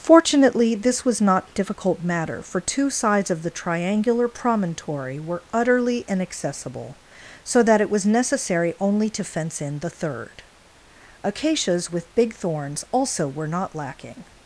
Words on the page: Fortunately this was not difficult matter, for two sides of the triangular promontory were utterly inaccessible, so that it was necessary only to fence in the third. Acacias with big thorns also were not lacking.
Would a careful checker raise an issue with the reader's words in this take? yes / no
no